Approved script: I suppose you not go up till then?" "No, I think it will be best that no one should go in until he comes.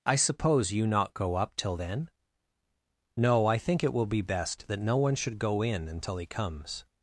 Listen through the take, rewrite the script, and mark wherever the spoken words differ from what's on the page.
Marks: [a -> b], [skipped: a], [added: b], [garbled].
I suppose you not go up till then?" "No, I think it will be best that no one should go in until he comes.